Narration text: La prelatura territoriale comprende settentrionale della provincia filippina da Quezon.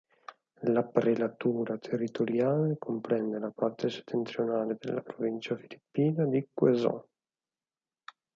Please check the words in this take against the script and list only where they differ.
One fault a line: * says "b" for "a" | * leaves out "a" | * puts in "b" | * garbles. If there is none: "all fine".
* puts in "la parte"
* says "di" for "da"